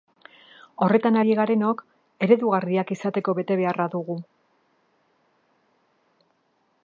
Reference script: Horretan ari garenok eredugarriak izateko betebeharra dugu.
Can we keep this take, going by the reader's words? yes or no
yes